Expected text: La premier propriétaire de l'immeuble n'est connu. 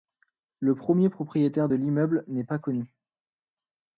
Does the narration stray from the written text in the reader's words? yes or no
yes